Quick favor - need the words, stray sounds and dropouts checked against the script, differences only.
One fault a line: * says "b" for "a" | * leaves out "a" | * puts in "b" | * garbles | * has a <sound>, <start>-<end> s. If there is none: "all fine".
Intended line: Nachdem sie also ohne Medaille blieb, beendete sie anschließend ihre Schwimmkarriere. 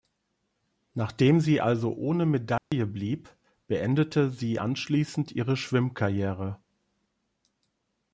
* has a dropout, 2.6-2.7 s